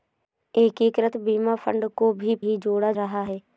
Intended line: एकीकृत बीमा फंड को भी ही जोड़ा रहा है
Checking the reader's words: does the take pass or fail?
pass